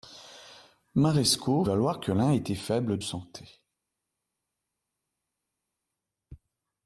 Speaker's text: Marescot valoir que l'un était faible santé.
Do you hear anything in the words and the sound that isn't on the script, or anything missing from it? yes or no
no